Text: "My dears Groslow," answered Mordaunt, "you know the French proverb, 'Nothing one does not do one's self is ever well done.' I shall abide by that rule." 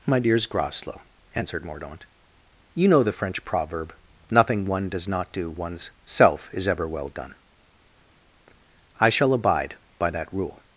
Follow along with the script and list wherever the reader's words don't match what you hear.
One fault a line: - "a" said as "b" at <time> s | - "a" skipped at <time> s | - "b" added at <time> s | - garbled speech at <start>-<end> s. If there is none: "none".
none